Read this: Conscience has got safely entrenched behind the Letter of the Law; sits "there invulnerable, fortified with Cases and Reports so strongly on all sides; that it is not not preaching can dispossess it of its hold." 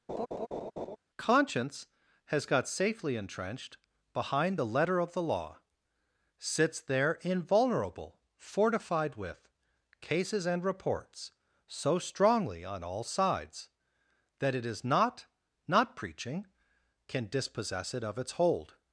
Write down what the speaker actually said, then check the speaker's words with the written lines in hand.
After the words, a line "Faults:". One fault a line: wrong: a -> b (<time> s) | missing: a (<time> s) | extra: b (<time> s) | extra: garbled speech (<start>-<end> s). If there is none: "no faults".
Conscience has got safely entrenched behind the Letter of the Law; sits "there invulnerable, fortified with Cases and Reports so strongly on all sides; that it is not not preaching can dispossess it of its hold."
Faults:
no faults